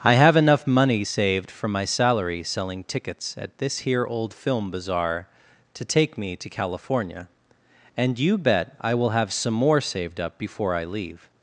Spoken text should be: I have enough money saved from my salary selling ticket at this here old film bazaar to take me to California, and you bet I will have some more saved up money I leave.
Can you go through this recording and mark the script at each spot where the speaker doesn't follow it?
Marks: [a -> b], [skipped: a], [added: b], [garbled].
I have enough money saved from my salary selling [ticket -> tickets] at this here old film bazaar to take me to California, and you bet I will have some more saved up [money -> before] I leave.